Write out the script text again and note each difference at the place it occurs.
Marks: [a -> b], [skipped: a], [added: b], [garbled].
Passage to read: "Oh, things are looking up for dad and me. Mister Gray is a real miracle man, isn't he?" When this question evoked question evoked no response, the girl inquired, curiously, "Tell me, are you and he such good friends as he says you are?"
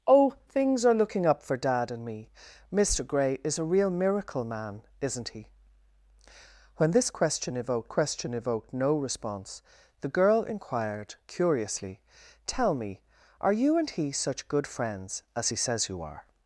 "Oh, things are looking up for dad and me. Mister Gray is a real miracle man, isn't he?" When this question evoked question evoked no response, the girl inquired, curiously, "Tell me, are you and he such good friends as he says you are?"